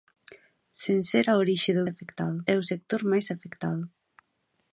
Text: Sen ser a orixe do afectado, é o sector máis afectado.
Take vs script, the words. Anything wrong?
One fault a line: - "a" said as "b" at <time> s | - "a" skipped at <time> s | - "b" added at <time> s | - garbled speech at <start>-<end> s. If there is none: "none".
none